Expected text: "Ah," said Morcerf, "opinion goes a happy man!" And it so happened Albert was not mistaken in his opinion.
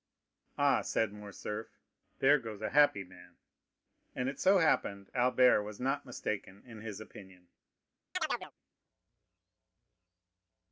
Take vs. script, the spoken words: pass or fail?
fail